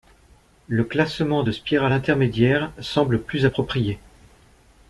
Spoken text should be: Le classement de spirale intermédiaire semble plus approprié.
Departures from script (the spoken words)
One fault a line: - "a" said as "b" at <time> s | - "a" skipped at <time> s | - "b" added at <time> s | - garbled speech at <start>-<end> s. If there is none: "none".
none